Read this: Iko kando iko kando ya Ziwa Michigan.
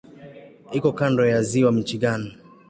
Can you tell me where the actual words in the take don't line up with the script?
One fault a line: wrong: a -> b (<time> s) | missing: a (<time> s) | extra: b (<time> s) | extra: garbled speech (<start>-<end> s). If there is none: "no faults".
missing: iko kando (1.2 s)